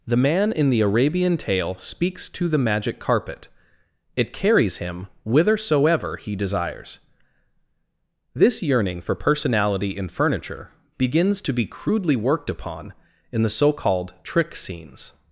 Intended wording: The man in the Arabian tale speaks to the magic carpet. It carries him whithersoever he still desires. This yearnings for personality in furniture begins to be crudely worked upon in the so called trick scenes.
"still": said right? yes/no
no